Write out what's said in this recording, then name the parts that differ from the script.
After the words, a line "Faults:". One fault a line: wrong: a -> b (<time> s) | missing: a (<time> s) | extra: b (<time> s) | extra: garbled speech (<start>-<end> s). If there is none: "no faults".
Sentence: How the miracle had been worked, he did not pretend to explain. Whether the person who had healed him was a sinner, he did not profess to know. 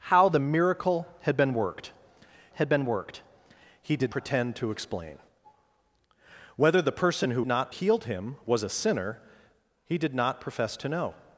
How the miracle had been worked had been worked, he did pretend to explain. Whether the person who not healed him was a sinner, he did not profess to know.
Faults:
extra: had been worked (2.5 s)
missing: not (4.1 s)
wrong: had -> not (7.5 s)